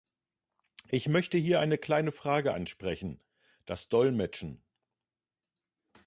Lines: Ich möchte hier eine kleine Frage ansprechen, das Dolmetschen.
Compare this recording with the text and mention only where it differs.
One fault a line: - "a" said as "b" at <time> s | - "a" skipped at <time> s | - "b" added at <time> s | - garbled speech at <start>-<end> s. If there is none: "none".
none